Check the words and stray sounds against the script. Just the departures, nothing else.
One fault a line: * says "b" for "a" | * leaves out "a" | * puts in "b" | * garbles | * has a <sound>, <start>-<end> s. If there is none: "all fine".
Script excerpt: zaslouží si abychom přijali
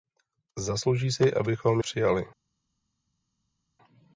all fine